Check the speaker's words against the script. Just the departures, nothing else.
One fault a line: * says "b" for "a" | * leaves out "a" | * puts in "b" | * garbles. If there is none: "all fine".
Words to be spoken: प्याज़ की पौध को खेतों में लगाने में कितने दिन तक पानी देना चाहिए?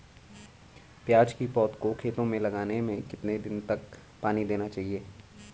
all fine